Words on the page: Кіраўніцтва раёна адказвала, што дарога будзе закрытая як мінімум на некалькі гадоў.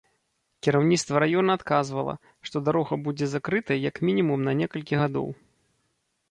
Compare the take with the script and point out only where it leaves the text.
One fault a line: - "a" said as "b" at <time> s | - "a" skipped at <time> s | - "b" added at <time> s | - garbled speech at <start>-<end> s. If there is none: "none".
none